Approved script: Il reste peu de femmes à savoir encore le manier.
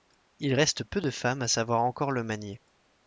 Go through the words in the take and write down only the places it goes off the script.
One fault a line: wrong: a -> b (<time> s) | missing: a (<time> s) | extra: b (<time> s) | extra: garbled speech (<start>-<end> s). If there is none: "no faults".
no faults